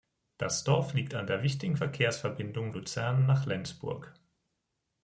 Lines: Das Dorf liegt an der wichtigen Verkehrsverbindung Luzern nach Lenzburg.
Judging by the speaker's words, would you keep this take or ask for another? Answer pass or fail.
pass